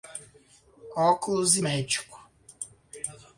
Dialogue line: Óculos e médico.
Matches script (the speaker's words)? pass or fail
pass